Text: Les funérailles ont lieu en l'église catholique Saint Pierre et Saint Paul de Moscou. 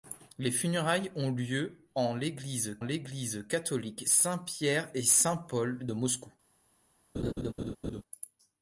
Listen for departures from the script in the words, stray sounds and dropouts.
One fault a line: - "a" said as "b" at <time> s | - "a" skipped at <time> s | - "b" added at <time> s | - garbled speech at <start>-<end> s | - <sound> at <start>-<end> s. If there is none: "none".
- "l'église" added at 2.8 s
- laugh at 7.1-8.0 s